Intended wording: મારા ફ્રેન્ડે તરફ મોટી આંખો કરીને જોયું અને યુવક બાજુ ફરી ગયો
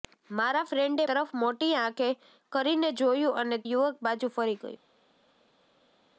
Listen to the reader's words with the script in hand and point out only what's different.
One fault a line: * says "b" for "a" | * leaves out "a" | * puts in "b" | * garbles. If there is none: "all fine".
all fine